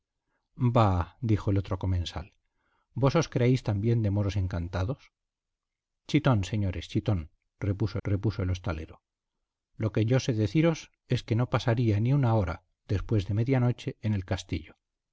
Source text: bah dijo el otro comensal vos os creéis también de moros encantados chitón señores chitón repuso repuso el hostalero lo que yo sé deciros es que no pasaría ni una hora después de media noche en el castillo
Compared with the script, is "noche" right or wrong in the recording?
right